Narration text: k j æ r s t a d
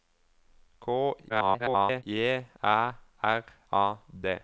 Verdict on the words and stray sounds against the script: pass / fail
fail